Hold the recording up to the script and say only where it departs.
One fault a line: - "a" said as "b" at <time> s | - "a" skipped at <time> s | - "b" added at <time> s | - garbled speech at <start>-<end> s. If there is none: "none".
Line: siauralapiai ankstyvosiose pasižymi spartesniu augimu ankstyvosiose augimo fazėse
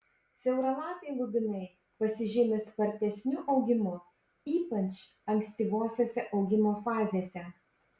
- "ankstyvosiose" said as "lubinai" at 1.2 s
- "ypač" added at 4.5 s